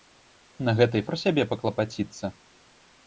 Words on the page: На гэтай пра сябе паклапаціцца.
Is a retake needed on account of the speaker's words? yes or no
no